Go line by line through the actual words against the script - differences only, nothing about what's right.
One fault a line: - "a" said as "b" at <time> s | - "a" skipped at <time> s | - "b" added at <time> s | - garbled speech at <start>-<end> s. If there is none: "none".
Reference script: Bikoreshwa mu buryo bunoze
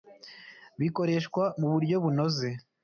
none